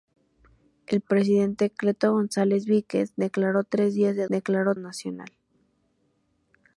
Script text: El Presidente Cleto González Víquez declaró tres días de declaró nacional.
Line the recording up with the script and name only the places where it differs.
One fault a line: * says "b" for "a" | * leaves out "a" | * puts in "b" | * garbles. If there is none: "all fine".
all fine